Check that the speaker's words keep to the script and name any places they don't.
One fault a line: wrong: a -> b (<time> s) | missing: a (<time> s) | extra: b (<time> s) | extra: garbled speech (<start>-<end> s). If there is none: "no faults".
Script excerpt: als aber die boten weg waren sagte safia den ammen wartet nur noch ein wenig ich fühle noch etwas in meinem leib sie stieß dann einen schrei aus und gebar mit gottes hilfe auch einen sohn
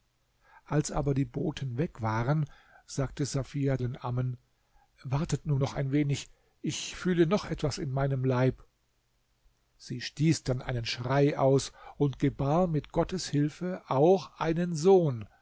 no faults